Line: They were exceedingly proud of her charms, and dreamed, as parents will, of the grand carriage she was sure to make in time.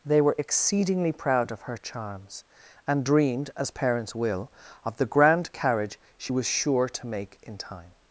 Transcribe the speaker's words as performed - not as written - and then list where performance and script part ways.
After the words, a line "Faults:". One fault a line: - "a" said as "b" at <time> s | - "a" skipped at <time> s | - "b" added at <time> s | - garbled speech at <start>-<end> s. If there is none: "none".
They were exceedingly proud of her charms, and dreamed, as parents will, of the grand carriage she was sure to make in time.
Faults:
none